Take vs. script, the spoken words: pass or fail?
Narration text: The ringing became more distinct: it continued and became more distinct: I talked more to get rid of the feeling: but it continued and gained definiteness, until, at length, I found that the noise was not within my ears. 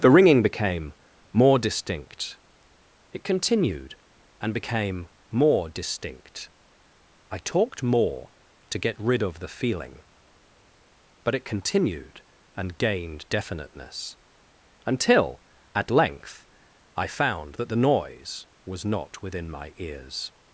pass